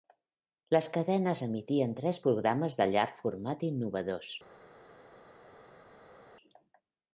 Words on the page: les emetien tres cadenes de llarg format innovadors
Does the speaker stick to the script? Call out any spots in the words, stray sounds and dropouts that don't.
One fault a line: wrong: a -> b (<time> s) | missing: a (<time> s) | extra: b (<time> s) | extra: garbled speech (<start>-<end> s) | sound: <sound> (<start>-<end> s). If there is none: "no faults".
extra: cadenes (0.9 s)
wrong: cadenes -> programes (2.3 s)